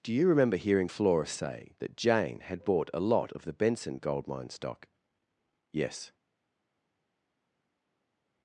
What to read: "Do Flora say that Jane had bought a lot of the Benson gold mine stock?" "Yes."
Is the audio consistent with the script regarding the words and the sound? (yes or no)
no